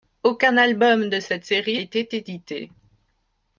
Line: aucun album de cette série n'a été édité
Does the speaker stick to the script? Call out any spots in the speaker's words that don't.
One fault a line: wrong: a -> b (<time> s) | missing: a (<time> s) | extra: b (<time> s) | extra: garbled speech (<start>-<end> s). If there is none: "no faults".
missing: n'a (1.8 s)